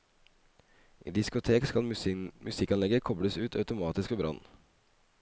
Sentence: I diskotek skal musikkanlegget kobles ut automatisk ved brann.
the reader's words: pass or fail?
pass